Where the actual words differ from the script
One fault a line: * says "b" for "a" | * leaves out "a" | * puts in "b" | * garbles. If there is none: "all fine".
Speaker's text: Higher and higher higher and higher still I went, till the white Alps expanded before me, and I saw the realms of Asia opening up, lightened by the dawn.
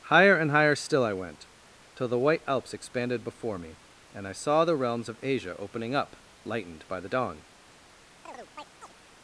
* leaves out "higher and higher"